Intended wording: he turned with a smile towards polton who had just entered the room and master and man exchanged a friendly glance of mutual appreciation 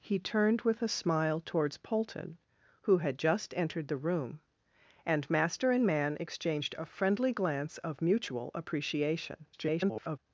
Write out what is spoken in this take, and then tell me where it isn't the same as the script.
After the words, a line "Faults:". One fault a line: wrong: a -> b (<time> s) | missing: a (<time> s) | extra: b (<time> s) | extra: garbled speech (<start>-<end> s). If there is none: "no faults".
he turned with a smile towards polton who had just entered the room and master and man exchanged a friendly glance of mutual appreciation [garbled]
Faults:
extra: garbled speech (9.5-10.2 s)